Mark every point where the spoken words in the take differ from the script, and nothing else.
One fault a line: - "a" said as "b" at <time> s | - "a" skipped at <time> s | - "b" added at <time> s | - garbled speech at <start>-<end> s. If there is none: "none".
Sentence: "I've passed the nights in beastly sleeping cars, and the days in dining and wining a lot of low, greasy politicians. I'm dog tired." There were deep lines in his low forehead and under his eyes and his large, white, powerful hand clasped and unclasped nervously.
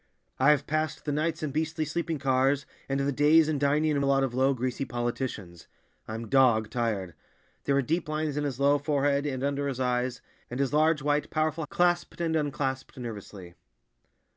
- "wining" skipped at 4.0 s
- "hand" skipped at 11.7 s